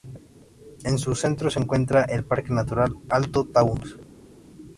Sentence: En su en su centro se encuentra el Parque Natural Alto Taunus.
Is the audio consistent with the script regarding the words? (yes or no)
no